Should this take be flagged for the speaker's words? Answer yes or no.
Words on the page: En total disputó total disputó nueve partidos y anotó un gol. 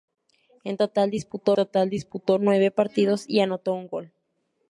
no